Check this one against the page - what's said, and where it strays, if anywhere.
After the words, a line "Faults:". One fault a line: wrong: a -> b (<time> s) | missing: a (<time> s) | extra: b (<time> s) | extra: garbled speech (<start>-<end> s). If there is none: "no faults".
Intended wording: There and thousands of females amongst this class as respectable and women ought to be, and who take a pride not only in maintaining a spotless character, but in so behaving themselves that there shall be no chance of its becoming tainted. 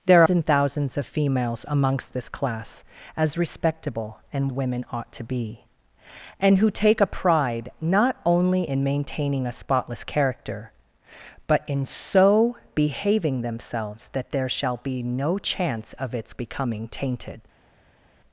There and thousands of females amongst this class as respectable and women ought to be, and who take a pride not only in maintaining a spotless character, but in so behaving themselves that there shall be no chance of its becoming tainted.
Faults:
no faults